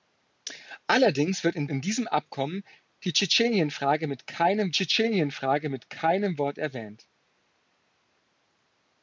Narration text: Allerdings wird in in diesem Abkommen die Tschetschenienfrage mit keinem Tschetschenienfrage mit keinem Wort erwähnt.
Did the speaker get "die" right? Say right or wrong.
right